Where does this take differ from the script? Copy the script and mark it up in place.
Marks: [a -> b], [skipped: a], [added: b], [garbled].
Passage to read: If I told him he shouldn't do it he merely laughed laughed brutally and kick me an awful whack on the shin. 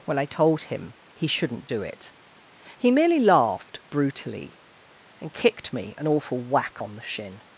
[If -> When] I told him he shouldn't do it he merely laughed [skipped: laughed] brutally and [kick -> kicked] me an awful whack on the shin.